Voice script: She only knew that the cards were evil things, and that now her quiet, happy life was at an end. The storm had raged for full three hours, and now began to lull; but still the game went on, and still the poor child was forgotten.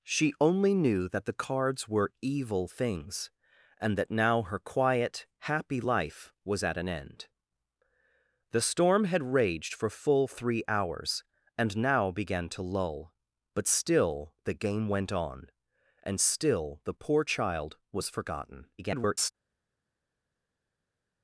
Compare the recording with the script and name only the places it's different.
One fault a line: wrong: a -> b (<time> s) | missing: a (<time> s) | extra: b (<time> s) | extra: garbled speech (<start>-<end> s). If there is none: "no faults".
extra: garbled speech (18.8-19.3 s)